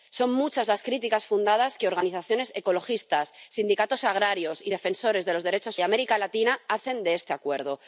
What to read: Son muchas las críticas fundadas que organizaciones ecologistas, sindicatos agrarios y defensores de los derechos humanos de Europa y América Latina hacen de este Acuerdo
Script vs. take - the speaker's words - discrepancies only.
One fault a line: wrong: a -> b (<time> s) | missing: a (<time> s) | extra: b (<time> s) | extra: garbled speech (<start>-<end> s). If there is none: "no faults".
missing: humanos de Europa (5.8 s)